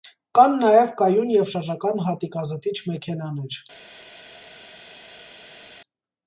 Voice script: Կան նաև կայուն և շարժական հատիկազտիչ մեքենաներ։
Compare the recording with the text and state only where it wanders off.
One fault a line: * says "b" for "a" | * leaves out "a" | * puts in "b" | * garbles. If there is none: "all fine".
all fine